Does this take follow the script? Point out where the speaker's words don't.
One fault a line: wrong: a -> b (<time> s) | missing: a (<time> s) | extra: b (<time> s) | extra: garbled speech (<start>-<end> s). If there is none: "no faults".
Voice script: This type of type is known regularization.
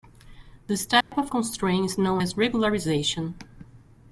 wrong: type -> constraint (1.3 s)
extra: as (2.2 s)